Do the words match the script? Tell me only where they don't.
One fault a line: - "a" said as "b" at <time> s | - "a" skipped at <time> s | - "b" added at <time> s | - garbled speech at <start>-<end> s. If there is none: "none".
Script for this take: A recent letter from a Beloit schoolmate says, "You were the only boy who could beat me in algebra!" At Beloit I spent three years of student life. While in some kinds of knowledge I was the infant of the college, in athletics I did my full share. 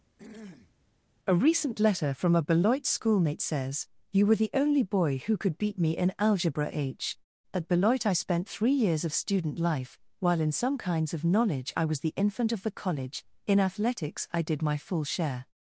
- "h" added at 6.7 s